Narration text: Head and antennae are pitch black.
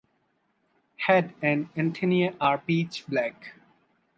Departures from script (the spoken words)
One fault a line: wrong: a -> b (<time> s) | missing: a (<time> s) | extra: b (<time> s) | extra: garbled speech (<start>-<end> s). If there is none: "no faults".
no faults